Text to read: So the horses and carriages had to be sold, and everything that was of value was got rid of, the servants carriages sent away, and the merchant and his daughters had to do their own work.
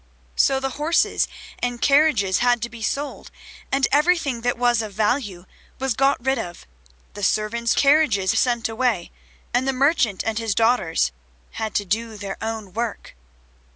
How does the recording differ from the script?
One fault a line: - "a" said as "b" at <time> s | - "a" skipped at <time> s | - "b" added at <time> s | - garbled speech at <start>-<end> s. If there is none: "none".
none